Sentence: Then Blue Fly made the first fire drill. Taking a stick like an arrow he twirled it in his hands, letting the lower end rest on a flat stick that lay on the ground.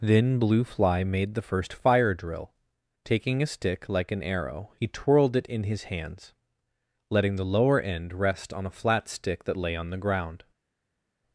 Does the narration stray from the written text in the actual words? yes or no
no